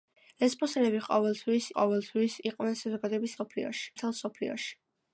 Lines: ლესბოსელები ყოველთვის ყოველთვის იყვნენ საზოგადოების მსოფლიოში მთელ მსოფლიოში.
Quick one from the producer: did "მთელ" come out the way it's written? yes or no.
yes